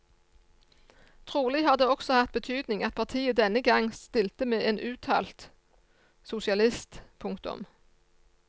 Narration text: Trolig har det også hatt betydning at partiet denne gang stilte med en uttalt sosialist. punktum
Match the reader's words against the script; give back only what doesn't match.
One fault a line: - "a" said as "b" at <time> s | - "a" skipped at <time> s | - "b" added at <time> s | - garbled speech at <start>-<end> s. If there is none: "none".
none